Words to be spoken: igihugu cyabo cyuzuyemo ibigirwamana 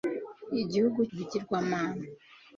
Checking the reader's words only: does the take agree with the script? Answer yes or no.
no